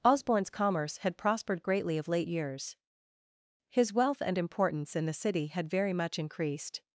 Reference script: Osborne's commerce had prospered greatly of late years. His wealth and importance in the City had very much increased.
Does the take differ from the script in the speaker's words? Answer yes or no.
no